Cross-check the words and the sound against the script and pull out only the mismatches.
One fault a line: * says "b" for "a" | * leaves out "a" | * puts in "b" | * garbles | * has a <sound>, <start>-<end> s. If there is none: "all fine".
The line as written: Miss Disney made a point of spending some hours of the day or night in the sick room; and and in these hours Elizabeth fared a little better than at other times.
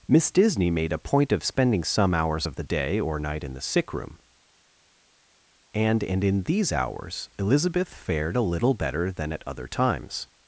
all fine